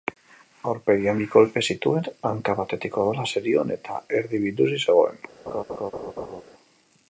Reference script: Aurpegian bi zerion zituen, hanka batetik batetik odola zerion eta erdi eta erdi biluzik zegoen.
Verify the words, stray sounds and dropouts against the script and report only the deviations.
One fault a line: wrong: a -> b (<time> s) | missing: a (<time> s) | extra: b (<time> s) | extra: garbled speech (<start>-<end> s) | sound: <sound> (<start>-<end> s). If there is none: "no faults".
wrong: zerion -> kolpe (1.3 s)
missing: batetik (3.0 s)
missing: eta erdi (4.4 s)
sound: laugh (5.5-6.4 s)